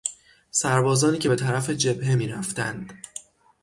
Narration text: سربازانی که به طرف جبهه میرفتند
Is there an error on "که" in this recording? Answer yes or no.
no